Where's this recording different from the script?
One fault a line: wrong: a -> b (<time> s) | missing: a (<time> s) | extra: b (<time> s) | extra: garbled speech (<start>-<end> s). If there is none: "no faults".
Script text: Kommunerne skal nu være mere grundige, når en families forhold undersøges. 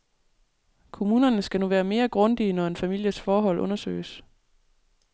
no faults